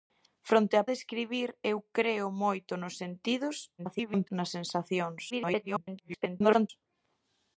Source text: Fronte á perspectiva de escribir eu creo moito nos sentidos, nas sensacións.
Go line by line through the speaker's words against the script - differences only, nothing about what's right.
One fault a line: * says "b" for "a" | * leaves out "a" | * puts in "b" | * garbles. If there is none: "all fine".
* leaves out "perspectiva"
* garbles
* garbles